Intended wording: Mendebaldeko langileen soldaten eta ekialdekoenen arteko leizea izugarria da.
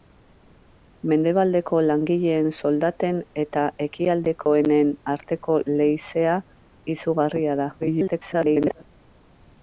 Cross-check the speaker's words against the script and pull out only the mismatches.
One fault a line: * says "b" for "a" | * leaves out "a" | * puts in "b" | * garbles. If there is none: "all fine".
* garbles